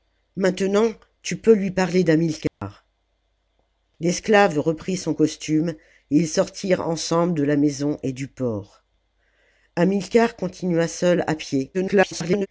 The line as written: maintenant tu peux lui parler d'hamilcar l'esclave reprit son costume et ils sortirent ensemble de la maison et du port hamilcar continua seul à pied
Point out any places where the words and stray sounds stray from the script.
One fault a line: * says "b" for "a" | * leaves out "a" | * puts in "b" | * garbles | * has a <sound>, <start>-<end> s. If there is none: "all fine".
* has a dropout, 2.5-2.6 s
* garbles